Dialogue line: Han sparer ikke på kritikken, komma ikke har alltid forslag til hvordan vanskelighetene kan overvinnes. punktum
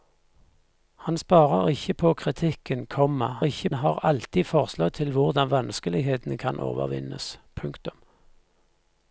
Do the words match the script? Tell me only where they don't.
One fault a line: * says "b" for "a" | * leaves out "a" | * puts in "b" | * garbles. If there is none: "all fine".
all fine